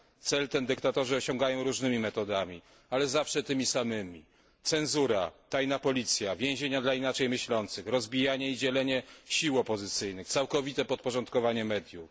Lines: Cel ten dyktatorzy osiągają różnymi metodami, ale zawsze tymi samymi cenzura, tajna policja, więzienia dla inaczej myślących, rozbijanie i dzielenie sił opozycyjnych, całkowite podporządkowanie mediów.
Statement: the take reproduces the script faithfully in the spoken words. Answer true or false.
true